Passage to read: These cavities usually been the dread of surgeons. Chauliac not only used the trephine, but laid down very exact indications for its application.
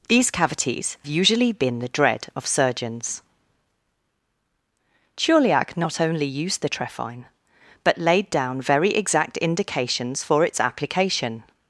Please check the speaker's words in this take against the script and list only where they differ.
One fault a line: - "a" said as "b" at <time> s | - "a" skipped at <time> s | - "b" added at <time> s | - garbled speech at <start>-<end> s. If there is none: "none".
none